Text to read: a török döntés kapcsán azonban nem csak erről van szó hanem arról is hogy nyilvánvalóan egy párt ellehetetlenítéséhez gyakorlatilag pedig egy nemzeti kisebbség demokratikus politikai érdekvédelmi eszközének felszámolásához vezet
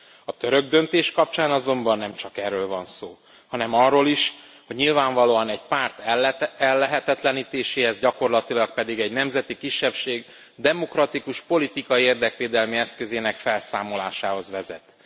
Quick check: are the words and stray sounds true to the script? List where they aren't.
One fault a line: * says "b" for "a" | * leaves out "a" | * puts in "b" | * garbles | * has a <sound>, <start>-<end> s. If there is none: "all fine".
all fine